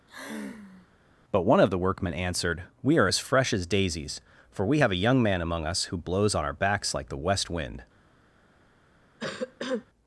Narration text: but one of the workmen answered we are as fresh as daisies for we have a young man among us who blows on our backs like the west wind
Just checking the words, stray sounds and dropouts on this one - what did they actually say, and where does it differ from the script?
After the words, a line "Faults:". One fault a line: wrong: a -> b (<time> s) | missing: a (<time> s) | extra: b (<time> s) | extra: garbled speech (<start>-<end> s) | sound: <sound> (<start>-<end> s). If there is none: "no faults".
but one of the workmen answered we are as fresh as daisies for we have a young man among us who blows on our backs like the west wind
Faults:
sound: sigh (0.1-0.9 s)
sound: cough (9.2-9.9 s)